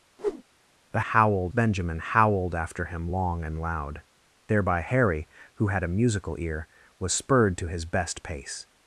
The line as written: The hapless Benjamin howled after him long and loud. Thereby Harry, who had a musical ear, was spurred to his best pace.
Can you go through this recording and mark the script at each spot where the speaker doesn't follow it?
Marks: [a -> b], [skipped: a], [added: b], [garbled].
The [hapless -> howled] Benjamin howled after him long and loud. Thereby Harry, who had a musical ear, was spurred to his best pace.